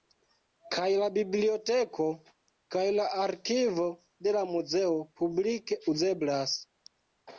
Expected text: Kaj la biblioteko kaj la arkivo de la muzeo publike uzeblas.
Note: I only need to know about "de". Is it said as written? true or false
true